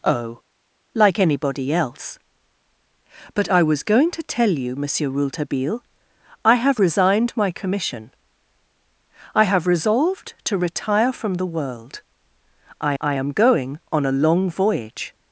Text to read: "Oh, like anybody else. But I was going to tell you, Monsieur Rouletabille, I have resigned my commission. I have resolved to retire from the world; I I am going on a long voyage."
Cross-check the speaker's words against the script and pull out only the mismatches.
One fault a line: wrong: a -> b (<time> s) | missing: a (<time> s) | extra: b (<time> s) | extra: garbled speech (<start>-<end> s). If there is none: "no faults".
no faults